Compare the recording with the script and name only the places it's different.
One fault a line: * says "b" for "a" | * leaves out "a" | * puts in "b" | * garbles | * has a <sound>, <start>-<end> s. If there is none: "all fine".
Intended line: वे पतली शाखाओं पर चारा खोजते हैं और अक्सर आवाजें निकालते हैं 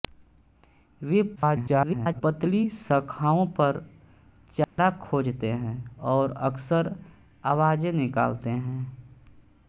* garbles
* has a dropout, 4.6-4.8 s